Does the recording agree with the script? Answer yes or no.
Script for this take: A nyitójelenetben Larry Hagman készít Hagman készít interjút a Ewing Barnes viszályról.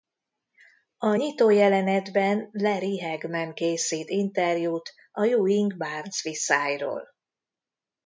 no